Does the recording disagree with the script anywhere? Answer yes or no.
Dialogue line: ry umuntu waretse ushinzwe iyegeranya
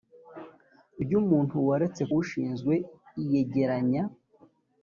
no